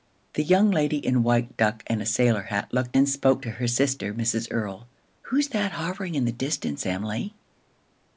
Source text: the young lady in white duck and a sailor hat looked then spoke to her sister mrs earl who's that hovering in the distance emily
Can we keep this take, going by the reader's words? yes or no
yes